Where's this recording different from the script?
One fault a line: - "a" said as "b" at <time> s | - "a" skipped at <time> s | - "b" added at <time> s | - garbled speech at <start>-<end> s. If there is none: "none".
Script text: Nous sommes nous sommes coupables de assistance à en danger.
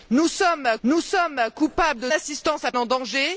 none